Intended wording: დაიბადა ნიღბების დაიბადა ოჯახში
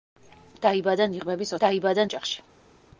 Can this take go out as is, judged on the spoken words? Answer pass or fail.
pass